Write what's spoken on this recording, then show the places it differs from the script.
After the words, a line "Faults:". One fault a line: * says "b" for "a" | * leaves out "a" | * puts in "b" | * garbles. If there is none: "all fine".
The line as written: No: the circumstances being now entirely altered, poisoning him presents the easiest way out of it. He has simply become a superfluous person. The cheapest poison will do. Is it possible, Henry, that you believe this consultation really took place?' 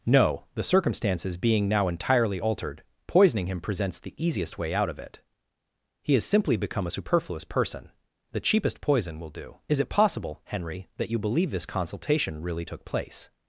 No: the circumstances being now entirely altered, poisoning him presents the easiest way out of it. He has simply become a superfluous person. The cheapest poison will do. Is it possible, Henry, that you believe this consultation really took place?'
Faults:
all fine